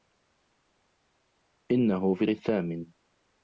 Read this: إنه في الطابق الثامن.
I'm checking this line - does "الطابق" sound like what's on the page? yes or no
no